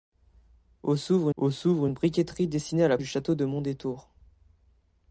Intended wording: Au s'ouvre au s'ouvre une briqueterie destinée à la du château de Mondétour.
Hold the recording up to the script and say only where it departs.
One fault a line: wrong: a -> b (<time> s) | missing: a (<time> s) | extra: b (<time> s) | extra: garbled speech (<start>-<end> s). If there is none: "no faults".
no faults